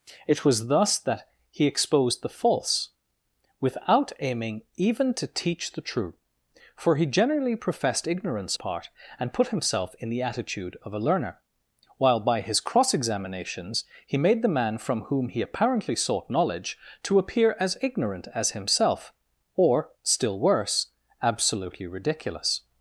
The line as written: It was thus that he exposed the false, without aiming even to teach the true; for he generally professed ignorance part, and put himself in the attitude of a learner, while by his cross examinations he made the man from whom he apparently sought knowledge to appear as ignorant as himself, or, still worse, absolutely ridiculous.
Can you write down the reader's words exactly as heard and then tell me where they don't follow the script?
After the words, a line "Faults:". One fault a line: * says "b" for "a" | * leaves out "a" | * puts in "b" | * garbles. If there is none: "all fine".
It was thus that he exposed the false, without aiming even to teach the true; for he generally professed ignorance part, and put himself in the attitude of a learner, while by his cross examinations he made the man from whom he apparently sought knowledge to appear as ignorant as himself, or, still worse, absolutely ridiculous.
Faults:
all fine